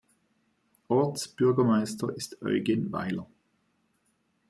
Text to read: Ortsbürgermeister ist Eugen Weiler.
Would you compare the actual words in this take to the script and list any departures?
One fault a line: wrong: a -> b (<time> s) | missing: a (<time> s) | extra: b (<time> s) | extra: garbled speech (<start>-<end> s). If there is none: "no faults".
no faults